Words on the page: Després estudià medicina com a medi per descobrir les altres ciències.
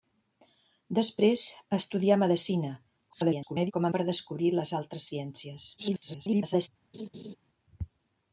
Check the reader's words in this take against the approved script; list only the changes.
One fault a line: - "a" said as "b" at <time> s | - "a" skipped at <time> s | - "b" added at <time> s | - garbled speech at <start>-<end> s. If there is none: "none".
- garbled speech at 3.1-3.7 s
- "medi" skipped at 3.9 s
- garbled speech at 5.8-6.7 s